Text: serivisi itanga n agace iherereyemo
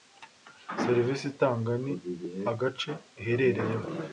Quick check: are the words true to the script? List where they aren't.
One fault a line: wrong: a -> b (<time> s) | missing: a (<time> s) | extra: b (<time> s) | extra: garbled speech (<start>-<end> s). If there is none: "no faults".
no faults